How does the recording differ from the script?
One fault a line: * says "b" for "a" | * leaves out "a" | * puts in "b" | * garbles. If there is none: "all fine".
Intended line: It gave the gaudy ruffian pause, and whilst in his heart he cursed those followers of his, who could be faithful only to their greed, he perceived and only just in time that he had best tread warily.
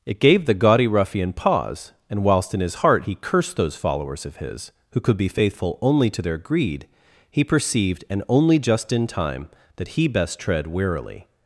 * leaves out "had"